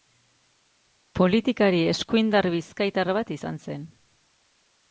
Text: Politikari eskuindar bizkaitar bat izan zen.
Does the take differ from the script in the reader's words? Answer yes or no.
no